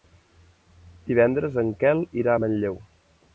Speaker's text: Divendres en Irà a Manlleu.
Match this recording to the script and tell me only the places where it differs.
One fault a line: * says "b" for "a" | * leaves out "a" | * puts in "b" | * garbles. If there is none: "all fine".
* puts in "Quel"